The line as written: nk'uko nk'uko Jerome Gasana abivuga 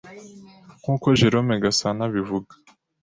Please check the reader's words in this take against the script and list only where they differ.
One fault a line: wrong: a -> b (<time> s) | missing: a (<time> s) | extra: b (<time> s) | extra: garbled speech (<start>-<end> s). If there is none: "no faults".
missing: nk'uko (1.1 s)